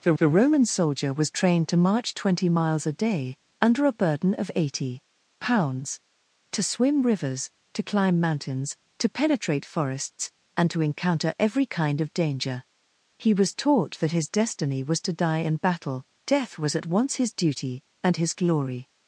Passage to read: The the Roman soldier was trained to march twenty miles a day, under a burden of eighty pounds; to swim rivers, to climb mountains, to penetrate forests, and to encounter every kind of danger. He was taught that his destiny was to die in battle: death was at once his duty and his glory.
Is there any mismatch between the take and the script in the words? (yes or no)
no